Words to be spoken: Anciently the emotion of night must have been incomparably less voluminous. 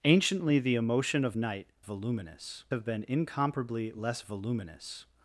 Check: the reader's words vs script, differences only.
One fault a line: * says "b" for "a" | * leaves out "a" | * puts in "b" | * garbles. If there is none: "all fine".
* says "voluminous" for "must"